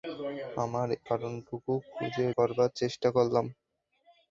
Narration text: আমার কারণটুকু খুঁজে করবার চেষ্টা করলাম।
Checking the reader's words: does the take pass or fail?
pass